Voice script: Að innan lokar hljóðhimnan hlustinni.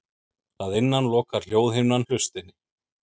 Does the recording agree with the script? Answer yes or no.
yes